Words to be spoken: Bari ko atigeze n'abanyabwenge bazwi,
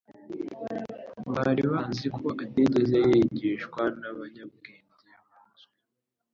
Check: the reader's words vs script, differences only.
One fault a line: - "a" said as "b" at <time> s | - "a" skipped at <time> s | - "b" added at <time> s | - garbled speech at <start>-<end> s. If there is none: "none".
- "bazi" added at 1.7 s
- "yigishwa" added at 3.1 s